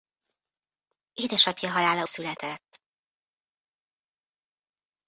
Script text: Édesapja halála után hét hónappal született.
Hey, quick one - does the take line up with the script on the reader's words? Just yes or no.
no